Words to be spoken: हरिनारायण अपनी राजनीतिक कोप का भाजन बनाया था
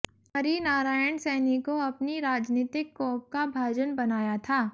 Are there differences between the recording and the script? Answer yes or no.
yes